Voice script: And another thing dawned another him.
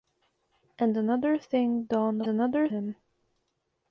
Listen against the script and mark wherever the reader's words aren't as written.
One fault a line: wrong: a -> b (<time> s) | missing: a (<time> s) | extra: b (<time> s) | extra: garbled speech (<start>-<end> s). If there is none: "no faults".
no faults